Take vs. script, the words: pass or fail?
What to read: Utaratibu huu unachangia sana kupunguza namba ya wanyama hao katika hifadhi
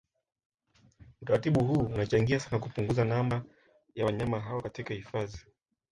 pass